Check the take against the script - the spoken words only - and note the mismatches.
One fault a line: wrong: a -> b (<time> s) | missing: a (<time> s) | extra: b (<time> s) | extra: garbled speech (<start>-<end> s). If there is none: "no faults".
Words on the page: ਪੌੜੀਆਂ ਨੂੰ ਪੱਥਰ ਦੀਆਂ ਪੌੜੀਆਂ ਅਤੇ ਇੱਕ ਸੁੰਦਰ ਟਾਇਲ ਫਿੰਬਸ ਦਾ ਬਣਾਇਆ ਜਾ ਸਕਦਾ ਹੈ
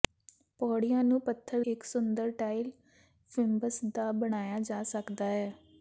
missing: ਦੀਆਂ ਪੌੜੀਆਂ ਅਤੇ (1.6 s)